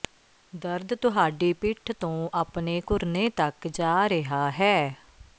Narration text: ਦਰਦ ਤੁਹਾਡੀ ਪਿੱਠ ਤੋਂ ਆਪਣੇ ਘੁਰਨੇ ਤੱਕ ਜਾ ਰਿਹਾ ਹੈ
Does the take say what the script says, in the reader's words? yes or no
yes